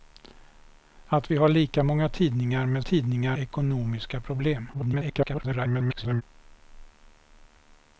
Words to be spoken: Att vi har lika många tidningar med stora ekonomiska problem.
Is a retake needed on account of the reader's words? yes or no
yes